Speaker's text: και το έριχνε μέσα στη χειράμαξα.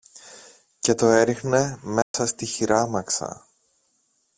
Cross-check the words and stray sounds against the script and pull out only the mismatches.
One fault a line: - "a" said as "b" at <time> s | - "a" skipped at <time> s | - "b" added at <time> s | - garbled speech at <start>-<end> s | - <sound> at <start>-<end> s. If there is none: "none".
- dropout at 2.0-2.1 s